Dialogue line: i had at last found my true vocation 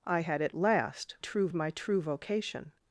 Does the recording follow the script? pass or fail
fail